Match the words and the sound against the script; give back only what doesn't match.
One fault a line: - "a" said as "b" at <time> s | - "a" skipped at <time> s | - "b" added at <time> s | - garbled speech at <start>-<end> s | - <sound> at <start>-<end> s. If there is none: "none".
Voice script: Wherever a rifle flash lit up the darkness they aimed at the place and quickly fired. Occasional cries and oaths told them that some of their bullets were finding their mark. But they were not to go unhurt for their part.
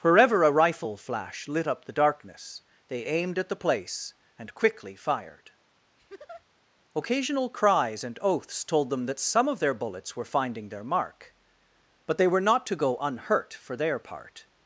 - laugh at 6.0-6.5 s